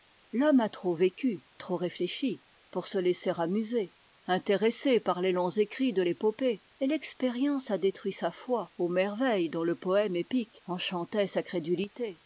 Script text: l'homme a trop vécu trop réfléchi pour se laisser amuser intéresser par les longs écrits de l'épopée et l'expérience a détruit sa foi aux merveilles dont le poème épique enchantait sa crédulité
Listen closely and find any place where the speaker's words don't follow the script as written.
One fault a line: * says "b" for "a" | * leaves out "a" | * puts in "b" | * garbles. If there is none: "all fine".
all fine